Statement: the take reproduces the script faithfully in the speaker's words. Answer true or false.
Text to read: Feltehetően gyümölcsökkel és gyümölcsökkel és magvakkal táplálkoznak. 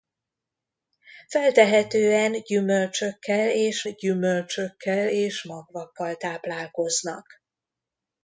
true